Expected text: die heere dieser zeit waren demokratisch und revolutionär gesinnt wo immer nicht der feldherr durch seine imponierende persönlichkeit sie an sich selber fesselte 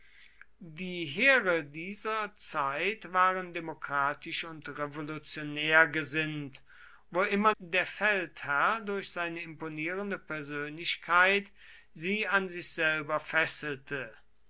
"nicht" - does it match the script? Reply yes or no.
no